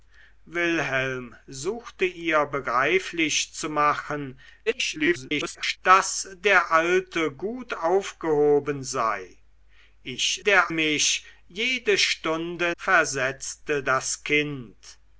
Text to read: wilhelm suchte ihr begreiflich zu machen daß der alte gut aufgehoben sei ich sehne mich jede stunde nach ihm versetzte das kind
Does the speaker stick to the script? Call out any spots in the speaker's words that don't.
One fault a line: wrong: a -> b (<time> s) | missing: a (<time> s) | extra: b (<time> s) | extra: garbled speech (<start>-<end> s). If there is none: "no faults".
extra: garbled speech (4.7-5.8 s)
wrong: sehne -> der (10.4 s)
missing: nach ihm (12.8 s)